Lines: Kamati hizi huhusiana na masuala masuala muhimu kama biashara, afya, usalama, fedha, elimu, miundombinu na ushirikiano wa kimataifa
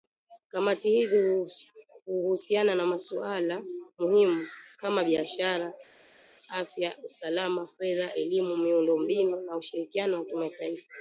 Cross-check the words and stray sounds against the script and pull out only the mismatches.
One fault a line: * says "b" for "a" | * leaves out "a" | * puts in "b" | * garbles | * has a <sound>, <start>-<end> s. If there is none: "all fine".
* leaves out "masuala"